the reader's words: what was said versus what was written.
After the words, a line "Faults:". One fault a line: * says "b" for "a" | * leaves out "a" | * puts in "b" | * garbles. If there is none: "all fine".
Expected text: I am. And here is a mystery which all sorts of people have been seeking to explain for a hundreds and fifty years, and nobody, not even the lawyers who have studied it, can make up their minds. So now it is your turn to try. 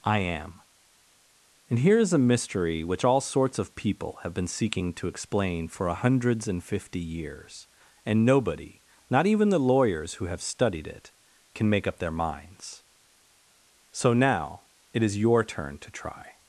I am. And here is a mystery which all sorts of people have been seeking to explain for a hundreds and fifty years, and nobody, not even the lawyers who have studied it, can make up their minds. So now it is your turn to try.
Faults:
all fine